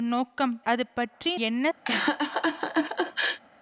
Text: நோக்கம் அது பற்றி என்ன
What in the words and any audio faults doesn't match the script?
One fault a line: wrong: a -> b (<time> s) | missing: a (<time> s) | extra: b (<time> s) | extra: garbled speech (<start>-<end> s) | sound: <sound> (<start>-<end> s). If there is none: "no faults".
sound: laugh (1.8-3.4 s)